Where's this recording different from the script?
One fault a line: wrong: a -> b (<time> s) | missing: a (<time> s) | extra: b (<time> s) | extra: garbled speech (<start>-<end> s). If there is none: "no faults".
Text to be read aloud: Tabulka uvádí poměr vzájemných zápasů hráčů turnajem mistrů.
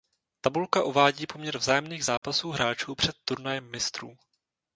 extra: před (2.9 s)